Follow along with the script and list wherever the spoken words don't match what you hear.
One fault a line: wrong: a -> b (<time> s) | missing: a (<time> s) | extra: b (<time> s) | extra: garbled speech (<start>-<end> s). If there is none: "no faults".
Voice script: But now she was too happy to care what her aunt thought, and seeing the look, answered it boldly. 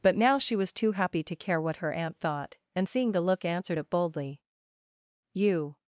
extra: You (5.3 s)